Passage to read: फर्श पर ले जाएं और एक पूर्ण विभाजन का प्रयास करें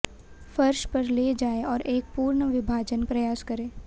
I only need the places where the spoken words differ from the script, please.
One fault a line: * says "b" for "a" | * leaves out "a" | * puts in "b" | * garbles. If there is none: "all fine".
* leaves out "का"